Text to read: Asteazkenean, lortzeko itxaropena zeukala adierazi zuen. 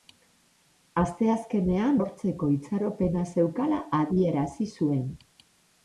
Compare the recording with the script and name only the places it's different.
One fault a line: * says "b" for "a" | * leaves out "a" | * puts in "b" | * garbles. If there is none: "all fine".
all fine